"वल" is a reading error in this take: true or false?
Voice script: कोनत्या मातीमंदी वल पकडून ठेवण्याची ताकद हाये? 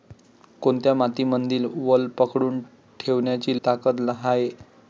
false